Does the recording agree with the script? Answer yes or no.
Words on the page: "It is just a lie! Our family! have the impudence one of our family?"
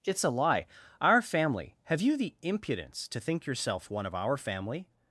no